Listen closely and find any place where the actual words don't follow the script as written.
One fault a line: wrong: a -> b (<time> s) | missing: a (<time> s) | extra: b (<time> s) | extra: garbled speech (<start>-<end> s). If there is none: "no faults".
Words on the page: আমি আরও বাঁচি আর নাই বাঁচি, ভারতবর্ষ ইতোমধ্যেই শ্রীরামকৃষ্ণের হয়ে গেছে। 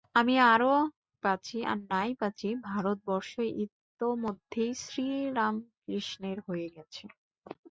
no faults